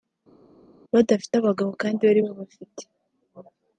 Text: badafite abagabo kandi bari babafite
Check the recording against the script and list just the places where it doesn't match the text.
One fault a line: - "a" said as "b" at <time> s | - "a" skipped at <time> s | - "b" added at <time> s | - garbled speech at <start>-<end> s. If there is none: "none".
none